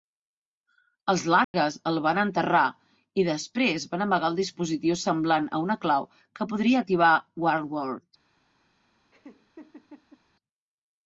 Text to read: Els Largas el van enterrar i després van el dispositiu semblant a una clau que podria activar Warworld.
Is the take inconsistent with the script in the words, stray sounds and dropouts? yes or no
yes